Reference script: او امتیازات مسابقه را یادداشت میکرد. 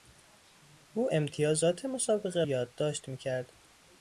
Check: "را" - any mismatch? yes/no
yes